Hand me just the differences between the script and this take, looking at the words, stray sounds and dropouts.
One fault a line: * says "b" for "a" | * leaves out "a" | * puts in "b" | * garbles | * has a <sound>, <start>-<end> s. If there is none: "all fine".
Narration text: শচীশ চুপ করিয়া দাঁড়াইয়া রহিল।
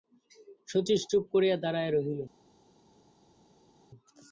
all fine